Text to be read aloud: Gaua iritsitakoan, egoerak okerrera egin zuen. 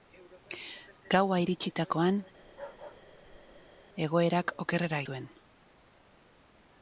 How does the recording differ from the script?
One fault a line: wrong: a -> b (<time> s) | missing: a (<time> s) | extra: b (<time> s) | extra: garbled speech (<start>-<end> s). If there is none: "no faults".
missing: egin (5.0 s)